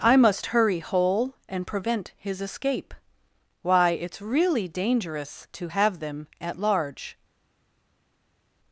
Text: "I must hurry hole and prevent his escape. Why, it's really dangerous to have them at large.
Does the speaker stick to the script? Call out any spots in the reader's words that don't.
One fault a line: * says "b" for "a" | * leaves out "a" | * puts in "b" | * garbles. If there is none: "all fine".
all fine